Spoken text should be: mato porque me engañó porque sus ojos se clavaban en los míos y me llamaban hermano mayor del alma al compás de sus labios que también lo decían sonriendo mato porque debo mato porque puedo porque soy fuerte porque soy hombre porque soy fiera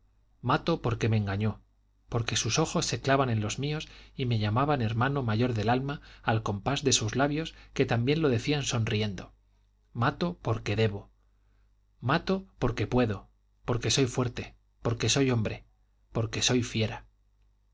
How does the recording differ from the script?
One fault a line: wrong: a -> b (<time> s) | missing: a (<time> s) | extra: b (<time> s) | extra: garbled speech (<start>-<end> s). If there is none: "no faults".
no faults